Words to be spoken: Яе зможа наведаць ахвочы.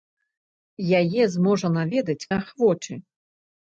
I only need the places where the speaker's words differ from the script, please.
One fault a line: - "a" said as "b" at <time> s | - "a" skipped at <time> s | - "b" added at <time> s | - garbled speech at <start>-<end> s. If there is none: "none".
none